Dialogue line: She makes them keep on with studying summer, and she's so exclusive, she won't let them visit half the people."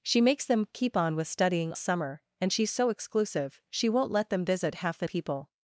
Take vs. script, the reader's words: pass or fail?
pass